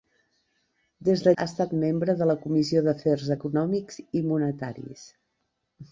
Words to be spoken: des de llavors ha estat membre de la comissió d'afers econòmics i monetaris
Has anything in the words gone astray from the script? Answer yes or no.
yes